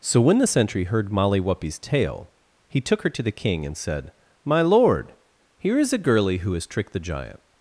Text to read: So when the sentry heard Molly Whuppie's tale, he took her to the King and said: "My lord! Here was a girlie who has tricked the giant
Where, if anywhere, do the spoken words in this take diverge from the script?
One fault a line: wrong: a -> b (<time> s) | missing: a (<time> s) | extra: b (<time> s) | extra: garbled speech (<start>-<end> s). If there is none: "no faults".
wrong: was -> is (5.8 s)